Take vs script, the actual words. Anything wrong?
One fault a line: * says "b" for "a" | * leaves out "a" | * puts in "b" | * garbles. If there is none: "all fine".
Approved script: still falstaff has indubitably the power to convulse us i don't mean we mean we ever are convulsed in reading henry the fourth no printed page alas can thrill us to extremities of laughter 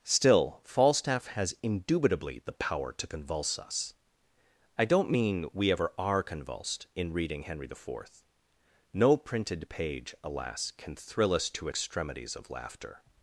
* leaves out "mean we"